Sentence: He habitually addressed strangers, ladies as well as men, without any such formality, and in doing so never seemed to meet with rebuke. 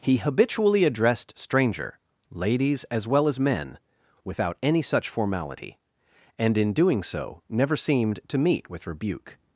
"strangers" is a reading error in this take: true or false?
true